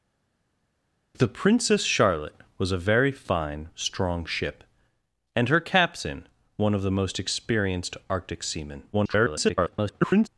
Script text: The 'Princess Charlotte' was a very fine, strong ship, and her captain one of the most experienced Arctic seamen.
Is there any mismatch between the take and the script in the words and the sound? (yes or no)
yes